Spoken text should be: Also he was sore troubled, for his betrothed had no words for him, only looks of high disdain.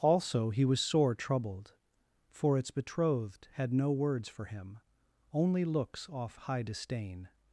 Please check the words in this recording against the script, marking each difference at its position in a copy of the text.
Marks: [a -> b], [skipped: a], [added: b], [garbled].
Also he was sore troubled, for [his -> its] betrothed had no words for him, only looks [of -> off] high disdain.